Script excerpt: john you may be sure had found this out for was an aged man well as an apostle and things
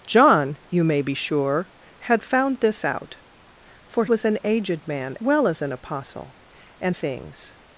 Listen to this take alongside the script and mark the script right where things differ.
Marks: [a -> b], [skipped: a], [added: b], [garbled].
john you may be sure had found this out for was an aged man well as an apostle and things